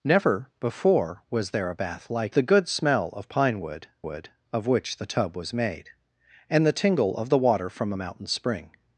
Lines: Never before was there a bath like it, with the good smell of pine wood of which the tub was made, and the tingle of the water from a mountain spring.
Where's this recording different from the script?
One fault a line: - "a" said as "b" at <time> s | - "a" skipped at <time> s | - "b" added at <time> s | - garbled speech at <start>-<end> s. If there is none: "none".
- "it with" skipped at 2.4 s
- "wood" added at 4.0 s